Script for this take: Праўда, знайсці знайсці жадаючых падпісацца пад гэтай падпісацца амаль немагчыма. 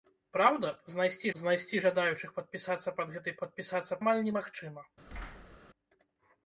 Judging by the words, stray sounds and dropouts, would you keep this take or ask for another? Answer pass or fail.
fail